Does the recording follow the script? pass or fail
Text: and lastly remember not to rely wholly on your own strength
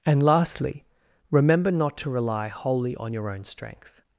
pass